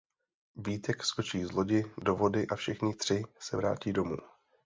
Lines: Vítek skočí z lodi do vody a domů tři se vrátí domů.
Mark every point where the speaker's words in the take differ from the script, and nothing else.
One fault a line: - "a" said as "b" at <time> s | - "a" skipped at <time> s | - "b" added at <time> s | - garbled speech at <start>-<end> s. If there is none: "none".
- "domů" said as "všichni" at 2.6 s